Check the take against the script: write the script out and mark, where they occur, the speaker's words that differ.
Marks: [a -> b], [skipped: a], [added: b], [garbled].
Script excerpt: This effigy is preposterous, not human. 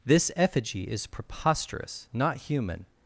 This effigy is preposterous, not human.